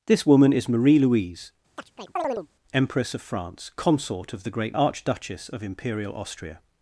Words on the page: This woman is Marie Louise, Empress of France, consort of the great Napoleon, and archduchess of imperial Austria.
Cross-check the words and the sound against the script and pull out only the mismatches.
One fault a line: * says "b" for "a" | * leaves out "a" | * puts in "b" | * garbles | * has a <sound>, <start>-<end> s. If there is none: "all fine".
* has a chirp, 1.8-2.5 s
* leaves out "Napoleon and"